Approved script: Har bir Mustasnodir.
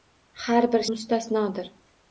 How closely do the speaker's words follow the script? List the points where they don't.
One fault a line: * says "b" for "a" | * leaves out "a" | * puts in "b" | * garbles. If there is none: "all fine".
all fine